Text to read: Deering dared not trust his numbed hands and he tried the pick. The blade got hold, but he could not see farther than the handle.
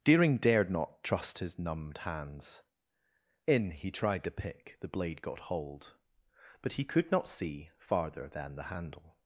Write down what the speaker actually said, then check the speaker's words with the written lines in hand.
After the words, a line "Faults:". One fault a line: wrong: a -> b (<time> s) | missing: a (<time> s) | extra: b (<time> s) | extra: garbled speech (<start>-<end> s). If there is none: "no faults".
Deering dared not trust his numbed hands in he tried the pick. The blade got hold, but he could not see farther than the handle.
Faults:
wrong: and -> in (3.5 s)